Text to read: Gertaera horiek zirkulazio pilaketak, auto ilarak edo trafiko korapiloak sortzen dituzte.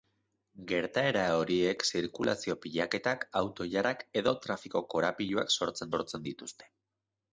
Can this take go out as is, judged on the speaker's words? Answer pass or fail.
fail